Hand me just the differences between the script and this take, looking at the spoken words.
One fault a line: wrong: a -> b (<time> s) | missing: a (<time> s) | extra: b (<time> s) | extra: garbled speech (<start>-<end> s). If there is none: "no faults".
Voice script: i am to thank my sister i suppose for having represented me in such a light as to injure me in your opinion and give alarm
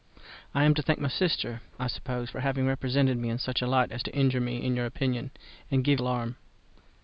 no faults